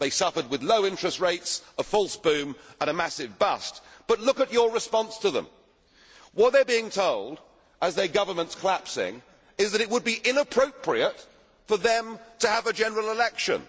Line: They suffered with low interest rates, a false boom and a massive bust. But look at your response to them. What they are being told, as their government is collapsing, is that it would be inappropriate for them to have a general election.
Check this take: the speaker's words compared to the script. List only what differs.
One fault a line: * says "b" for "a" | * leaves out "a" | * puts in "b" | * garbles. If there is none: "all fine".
all fine